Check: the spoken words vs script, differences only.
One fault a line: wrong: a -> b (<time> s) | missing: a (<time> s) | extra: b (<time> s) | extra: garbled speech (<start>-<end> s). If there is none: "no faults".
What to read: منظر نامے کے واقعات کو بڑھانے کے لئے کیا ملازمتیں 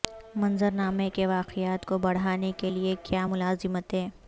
no faults